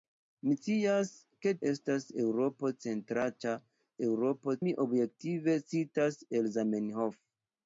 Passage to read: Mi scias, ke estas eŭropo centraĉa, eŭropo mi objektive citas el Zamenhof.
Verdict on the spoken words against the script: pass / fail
pass